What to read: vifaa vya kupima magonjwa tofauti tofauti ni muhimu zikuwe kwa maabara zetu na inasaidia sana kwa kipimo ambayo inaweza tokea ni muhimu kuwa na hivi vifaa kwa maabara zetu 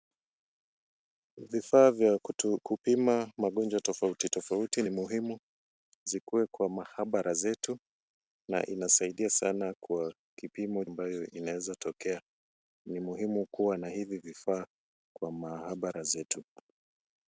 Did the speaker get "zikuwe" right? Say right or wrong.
right